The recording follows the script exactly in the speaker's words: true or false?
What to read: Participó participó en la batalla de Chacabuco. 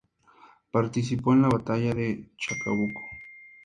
false